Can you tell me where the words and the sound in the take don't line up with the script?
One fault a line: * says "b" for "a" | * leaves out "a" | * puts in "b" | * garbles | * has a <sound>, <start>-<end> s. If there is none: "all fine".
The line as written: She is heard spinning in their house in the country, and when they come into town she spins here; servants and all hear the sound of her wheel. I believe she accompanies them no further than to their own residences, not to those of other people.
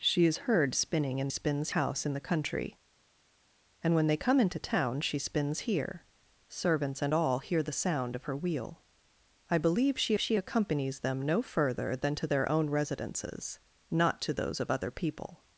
* says "spins" for "their"
* puts in "she"